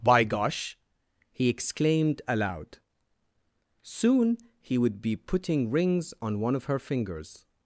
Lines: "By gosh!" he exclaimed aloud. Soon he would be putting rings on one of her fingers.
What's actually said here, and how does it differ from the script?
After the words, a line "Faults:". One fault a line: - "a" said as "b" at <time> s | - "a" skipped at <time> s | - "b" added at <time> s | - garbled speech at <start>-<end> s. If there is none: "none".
"By gosh!" he exclaimed aloud. Soon he would be putting rings on one of her fingers.
Faults:
none